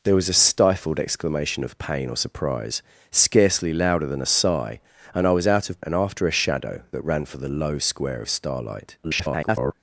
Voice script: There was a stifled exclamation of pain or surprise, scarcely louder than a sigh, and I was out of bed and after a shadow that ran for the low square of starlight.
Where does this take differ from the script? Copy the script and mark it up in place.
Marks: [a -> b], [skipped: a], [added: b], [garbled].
There was a stifled exclamation of pain or surprise, scarcely louder than a sigh, and I was out of [skipped: bed] and after a shadow that ran for the low square of starlight. [garbled]